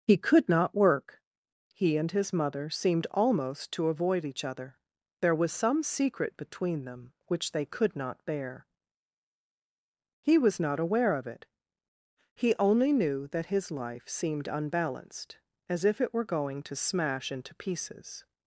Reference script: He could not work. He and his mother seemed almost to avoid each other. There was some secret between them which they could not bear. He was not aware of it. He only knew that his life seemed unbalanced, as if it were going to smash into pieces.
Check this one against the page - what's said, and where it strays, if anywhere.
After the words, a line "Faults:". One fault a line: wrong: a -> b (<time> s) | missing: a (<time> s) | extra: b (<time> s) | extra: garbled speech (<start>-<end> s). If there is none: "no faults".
He could not work. He and his mother seemed almost to avoid each other. There was some secret between them which they could not bear. He was not aware of it. He only knew that his life seemed unbalanced, as if it were going to smash into pieces.
Faults:
no faults